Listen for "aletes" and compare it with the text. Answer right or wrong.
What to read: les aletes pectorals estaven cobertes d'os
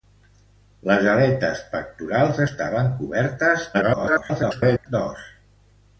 right